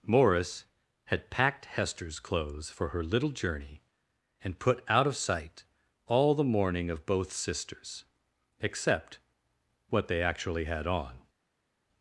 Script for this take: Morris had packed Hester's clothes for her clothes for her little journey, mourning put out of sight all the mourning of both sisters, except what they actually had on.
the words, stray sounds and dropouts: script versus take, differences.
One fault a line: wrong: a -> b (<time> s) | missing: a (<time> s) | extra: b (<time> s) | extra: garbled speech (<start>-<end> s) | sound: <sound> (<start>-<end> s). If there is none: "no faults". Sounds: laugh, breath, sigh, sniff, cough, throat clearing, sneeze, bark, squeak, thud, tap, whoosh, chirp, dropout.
missing: clothes for her (3.0 s)
wrong: mourning -> and (4.4 s)